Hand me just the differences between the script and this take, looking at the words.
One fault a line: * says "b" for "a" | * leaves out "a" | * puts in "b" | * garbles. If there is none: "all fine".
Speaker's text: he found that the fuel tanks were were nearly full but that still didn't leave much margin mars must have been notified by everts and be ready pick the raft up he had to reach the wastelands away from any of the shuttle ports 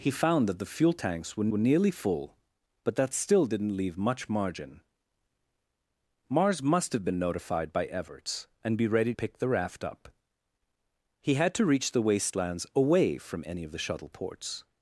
all fine